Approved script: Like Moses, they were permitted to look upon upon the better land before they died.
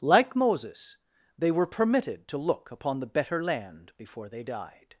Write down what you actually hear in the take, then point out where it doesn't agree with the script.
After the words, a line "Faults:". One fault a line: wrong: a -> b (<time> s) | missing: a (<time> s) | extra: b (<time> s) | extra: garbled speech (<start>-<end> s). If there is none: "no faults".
Like Moses, they were permitted to look upon the better land before they died.
Faults:
missing: upon (3.0 s)